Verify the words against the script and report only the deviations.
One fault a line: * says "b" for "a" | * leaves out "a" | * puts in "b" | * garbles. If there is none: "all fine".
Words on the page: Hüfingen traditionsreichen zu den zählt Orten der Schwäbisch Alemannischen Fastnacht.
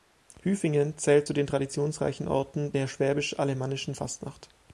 * says "zählt" for "traditionsreichen"
* says "traditionsreichen" for "zählt"